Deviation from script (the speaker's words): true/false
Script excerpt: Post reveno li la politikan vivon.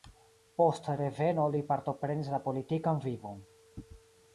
true